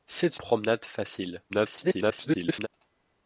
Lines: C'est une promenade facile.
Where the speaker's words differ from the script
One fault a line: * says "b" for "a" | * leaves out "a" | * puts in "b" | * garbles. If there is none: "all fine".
* leaves out "une"
* garbles